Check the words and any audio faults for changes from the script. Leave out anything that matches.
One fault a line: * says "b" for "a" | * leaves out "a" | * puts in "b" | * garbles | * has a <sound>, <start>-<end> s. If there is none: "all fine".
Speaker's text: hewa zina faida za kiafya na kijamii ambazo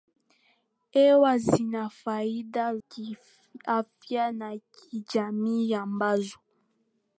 * leaves out "za"